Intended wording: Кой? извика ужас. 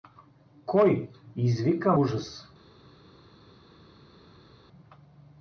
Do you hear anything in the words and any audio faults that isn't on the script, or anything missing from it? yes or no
no